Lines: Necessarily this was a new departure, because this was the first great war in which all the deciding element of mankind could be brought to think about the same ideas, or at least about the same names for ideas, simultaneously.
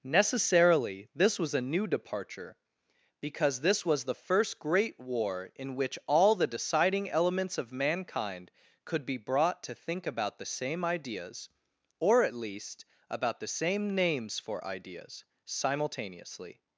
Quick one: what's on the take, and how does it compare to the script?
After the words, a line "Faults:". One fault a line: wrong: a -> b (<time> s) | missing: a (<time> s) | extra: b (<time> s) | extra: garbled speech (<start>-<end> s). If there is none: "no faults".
Necessarily this was a new departure, because this was the first great war in which all the deciding elements of mankind could be brought to think about the same ideas, or at least about the same names for ideas, simultaneously.
Faults:
wrong: element -> elements (7.1 s)